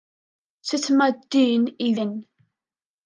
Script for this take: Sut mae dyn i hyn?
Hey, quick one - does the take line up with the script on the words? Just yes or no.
yes